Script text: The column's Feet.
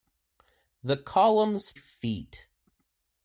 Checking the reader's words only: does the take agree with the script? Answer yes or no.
yes